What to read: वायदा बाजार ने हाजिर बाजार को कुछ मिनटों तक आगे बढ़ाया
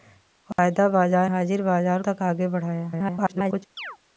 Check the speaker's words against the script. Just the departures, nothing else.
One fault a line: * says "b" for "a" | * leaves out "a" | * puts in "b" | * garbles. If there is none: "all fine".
* leaves out "ने"
* leaves out "को कुछ मिनटों"
* garbles